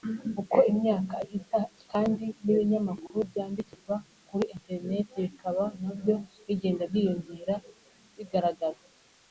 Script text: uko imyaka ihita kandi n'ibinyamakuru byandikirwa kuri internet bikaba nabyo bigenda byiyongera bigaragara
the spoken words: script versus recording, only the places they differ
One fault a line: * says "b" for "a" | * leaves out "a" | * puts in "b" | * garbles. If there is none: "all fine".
all fine